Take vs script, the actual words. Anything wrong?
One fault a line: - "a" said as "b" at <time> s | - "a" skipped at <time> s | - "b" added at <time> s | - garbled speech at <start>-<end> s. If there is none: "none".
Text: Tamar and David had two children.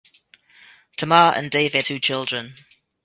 - "had" skipped at 1.9 s